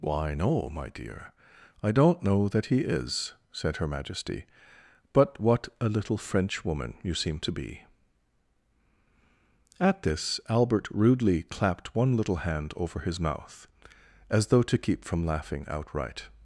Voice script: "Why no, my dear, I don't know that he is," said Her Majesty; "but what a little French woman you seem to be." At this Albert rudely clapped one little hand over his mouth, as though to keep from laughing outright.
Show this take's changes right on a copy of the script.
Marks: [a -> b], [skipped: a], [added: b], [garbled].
"Why no, my dear, I don't know that he is," said Her Majesty; "but what a little French woman you seem to be." At this Albert rudely clapped one little hand over his mouth, as though to keep from laughing outright.